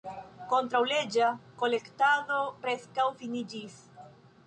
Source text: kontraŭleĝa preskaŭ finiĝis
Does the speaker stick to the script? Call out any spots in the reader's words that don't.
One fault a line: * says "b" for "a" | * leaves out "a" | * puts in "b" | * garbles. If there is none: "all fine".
* puts in "kolektado"